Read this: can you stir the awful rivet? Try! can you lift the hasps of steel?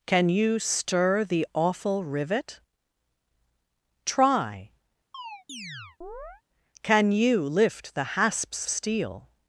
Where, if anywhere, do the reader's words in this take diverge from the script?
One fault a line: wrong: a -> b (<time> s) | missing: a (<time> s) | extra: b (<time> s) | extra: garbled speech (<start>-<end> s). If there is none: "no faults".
missing: of (8.7 s)